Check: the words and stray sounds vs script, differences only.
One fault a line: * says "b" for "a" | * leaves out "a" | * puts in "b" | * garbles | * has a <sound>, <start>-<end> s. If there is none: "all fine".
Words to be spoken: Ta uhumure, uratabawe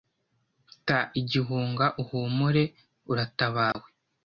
* puts in "igihunga"
* has a dropout, 3.7-3.7 s